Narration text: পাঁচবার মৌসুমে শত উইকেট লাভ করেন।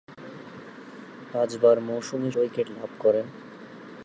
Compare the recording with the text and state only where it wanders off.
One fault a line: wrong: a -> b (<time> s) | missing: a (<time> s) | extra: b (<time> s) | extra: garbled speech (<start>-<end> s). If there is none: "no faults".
missing: শত (2.3 s)